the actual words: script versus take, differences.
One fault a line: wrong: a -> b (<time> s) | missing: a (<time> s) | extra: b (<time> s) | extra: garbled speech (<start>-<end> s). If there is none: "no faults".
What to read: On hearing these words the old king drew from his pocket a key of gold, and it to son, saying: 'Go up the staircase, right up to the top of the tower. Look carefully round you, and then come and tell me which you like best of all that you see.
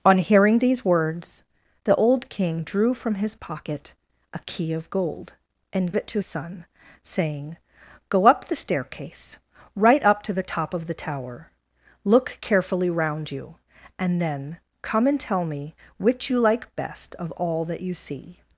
no faults